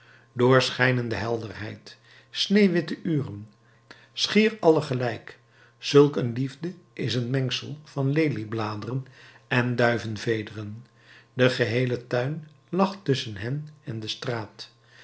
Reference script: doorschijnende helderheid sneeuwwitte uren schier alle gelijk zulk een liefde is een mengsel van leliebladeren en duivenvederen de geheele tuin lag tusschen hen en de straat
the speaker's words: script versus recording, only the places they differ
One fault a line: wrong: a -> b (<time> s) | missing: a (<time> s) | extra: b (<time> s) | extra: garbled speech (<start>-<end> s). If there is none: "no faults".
no faults